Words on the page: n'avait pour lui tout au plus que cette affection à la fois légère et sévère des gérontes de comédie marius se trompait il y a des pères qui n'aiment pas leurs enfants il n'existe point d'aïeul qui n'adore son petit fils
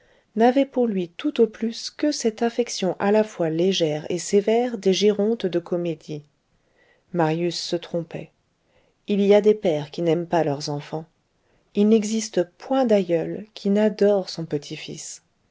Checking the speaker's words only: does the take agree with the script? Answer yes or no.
yes